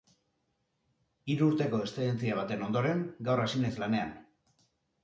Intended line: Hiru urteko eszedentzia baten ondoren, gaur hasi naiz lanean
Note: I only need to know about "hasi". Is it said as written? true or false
true